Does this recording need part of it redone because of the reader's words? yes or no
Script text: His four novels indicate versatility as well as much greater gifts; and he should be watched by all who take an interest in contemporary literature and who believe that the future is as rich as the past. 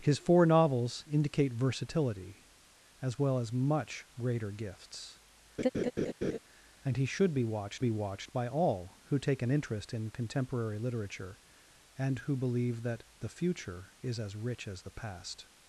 yes